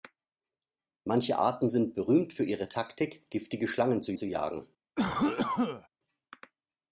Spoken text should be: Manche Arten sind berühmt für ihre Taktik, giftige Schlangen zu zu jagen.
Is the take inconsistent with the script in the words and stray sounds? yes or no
yes